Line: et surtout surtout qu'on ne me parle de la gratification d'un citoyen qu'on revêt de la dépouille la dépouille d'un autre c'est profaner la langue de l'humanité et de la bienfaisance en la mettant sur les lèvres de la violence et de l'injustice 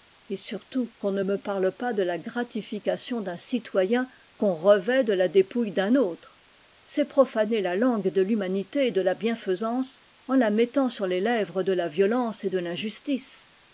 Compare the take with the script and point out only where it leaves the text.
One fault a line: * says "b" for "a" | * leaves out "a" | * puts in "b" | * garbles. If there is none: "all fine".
* leaves out "surtout"
* puts in "pas"
* leaves out "la dépouille"